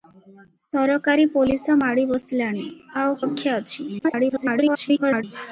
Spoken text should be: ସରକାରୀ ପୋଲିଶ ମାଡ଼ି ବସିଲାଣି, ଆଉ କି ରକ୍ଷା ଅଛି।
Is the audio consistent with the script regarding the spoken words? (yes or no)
no